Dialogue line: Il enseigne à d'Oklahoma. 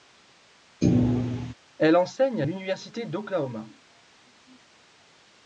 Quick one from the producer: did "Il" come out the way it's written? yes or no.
no